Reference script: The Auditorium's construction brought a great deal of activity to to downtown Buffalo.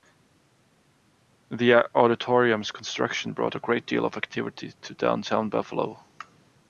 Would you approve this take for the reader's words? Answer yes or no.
no